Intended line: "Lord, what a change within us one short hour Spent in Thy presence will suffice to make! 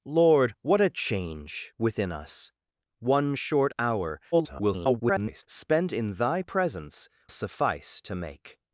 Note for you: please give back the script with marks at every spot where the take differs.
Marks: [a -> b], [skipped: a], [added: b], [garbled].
"Lord, what a change within us one short hour [garbled] Spent in Thy presence [skipped: will] suffice to make!